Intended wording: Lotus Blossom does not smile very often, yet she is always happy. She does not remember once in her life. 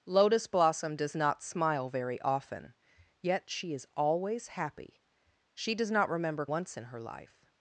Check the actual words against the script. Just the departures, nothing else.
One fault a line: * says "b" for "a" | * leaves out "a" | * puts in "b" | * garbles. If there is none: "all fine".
all fine